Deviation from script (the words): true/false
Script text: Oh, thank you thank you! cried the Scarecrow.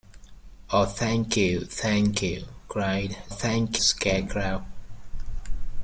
true